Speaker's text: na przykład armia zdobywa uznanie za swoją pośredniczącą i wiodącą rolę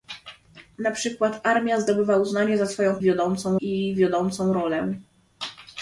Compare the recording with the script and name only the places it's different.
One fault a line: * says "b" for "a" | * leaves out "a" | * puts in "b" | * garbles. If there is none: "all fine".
* says "wiodącą" for "pośredniczącą"